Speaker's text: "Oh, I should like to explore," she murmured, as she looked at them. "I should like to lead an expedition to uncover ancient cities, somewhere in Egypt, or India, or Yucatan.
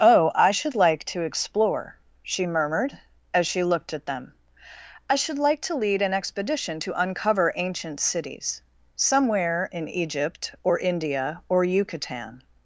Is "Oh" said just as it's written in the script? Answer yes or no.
yes